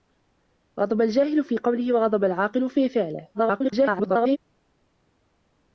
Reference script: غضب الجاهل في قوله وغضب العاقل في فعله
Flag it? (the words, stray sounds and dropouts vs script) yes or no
yes